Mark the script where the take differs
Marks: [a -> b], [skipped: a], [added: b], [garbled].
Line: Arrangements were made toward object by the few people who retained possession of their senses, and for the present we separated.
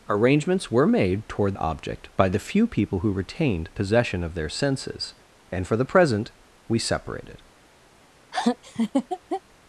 Arrangements were made toward object by the few people who retained possession of their senses, and for the present we separated.